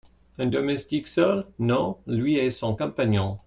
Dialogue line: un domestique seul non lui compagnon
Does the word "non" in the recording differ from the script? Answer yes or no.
no